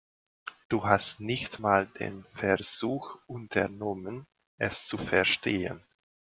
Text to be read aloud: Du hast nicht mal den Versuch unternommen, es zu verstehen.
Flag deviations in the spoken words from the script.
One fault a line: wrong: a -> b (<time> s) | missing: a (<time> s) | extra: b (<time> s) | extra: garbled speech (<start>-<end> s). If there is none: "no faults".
no faults